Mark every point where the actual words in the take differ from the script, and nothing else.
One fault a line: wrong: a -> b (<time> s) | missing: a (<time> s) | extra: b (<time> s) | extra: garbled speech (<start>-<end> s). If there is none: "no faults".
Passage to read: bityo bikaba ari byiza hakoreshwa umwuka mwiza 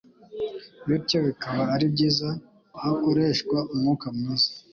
no faults